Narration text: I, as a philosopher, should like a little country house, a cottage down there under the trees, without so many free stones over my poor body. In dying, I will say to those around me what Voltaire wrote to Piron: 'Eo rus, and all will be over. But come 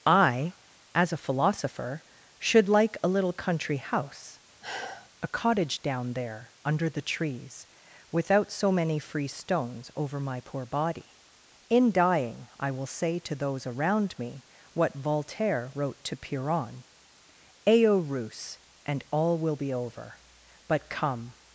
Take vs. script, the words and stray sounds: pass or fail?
fail